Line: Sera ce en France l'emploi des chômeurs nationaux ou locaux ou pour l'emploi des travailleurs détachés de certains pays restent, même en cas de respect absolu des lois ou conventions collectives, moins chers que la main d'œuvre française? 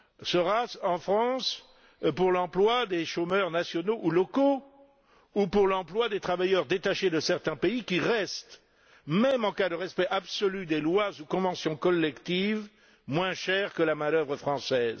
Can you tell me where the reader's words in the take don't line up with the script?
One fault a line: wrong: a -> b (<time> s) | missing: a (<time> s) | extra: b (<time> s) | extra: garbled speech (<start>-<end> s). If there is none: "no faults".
extra: pour (2.2 s)
extra: qui (7.8 s)